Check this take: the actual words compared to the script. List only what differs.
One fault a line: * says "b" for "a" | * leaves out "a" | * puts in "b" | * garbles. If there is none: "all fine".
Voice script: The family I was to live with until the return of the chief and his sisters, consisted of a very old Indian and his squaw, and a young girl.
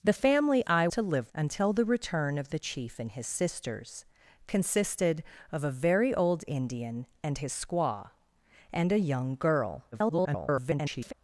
* leaves out "was"
* leaves out "with"
* garbles